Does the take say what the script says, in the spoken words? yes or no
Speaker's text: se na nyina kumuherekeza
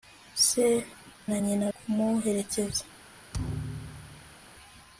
yes